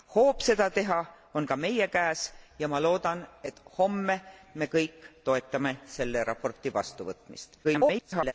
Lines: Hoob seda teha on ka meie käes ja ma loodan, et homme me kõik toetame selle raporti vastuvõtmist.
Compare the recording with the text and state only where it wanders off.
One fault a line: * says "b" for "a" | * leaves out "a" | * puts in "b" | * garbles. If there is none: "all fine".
* garbles